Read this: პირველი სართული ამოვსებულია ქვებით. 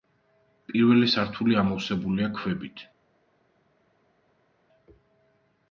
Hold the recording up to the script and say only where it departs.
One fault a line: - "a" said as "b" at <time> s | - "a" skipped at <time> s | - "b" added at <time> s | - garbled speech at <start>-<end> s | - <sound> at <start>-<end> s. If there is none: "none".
none